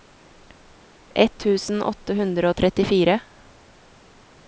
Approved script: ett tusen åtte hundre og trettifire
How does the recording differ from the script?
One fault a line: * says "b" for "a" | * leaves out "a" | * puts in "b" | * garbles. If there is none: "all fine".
all fine